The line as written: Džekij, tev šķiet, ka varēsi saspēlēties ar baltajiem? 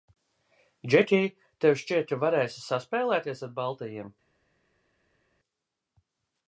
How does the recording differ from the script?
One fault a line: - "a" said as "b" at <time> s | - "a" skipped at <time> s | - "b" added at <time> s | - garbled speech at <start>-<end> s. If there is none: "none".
none